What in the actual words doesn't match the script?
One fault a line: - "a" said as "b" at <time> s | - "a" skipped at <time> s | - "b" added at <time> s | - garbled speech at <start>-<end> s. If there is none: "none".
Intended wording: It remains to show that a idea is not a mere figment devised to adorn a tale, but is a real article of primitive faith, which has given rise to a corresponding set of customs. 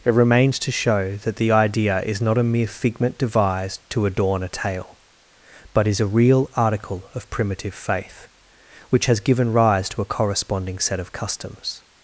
- "a" said as "the" at 1.4 s